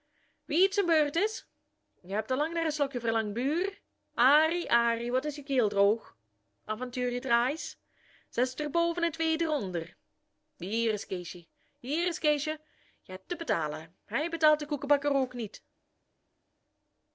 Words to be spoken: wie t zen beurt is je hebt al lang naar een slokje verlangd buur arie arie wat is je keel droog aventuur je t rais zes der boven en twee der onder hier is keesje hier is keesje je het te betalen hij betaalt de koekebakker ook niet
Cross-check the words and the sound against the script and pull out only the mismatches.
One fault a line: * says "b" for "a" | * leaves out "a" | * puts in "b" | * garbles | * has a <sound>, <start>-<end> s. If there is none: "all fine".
all fine